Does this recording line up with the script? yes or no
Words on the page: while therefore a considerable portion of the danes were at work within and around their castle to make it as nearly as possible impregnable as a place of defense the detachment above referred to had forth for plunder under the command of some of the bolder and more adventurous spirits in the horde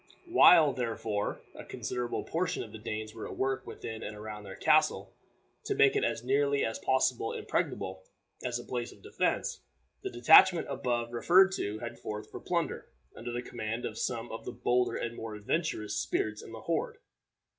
yes